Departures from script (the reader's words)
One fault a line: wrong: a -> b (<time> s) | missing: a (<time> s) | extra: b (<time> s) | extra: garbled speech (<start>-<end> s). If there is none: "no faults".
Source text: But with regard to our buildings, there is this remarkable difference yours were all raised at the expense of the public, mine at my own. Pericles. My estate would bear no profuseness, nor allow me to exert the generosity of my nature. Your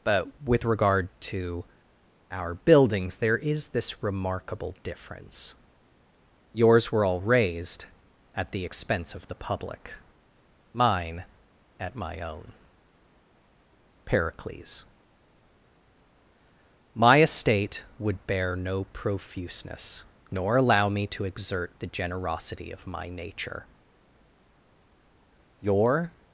no faults